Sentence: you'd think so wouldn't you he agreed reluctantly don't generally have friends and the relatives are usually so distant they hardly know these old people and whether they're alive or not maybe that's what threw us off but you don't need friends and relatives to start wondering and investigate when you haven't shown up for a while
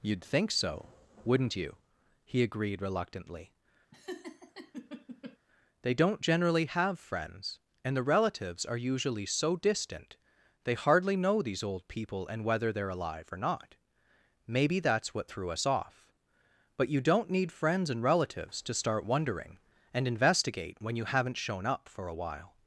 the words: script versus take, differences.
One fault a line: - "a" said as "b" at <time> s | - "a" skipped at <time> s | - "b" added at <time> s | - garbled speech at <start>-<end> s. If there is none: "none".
- "they" added at 5.8 s